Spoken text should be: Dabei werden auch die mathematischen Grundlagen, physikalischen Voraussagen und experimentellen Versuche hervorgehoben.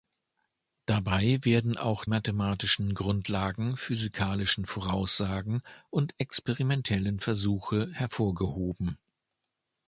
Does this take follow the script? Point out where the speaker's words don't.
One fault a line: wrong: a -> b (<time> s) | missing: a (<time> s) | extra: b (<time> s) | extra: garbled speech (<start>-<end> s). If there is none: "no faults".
missing: die (2.0 s)